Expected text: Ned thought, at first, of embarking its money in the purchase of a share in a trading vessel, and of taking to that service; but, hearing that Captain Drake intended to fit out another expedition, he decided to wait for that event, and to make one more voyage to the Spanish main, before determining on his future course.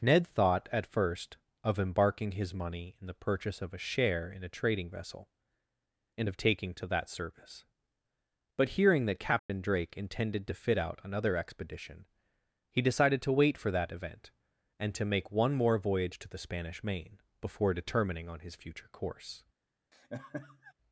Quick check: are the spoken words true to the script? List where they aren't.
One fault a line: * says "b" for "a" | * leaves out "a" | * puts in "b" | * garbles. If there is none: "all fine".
* says "his" for "its"